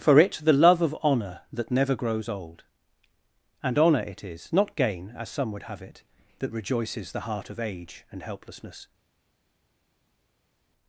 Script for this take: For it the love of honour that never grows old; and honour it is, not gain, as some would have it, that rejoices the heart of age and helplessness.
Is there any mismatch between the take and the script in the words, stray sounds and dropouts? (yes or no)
no